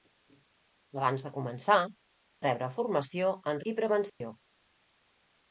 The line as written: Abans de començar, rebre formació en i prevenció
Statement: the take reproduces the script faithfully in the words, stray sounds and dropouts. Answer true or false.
false